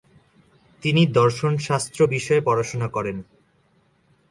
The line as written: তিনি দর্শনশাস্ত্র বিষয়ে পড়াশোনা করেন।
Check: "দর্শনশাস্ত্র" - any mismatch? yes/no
no